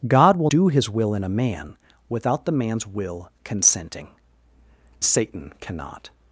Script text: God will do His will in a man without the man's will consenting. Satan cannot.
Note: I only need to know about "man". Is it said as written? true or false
true